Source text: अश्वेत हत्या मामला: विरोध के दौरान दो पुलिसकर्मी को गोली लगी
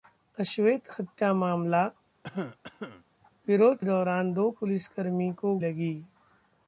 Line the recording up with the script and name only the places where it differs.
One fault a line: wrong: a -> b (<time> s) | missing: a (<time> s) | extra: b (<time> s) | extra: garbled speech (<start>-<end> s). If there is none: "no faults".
missing: के (3.8 s)
missing: गोली (5.5 s)